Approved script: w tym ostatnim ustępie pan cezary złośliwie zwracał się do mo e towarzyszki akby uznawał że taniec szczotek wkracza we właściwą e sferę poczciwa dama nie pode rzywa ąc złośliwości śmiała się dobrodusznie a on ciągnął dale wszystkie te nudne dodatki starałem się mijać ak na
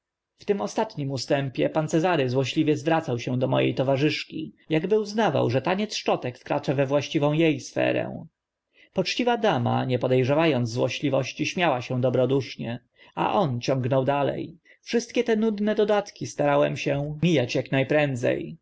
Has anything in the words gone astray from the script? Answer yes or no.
no